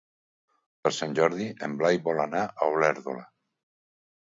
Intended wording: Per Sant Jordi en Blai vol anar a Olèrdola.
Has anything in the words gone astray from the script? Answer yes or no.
no